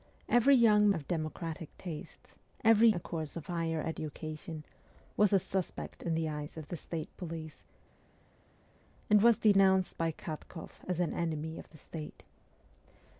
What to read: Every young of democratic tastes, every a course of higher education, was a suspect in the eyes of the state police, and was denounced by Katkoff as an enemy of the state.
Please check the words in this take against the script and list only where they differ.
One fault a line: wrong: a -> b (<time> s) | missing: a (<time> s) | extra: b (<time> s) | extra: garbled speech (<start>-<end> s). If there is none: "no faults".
no faults